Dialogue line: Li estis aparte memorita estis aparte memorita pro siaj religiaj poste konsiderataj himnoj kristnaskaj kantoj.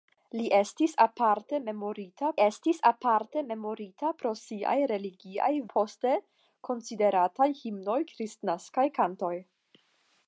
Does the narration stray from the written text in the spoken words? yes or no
no